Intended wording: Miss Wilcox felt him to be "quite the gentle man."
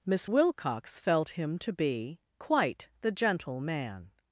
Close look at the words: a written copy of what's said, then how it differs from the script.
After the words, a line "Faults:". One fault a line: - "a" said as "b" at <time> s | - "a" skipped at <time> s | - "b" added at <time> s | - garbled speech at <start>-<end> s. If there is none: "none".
Miss Wilcox felt him to be "quite the gentle man."
Faults:
none